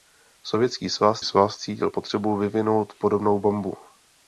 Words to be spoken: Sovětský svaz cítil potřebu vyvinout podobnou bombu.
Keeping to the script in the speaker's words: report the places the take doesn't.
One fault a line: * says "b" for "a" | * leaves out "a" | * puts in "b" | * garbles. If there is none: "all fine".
* puts in "svaz"